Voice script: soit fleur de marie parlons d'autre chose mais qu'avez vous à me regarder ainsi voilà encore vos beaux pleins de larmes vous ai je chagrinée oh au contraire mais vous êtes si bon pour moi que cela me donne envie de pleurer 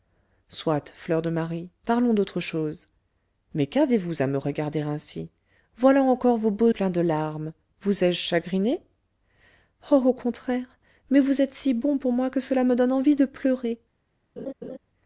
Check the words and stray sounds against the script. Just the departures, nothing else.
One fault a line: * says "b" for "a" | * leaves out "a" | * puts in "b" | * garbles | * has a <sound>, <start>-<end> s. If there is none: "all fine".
* has a laugh, 14.4-14.8 s